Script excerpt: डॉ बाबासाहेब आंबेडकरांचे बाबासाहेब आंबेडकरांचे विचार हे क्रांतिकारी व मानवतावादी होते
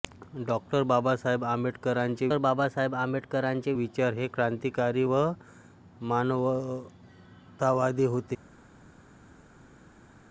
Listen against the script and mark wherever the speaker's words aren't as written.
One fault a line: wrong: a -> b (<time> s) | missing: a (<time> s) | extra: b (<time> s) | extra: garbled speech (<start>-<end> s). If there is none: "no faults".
no faults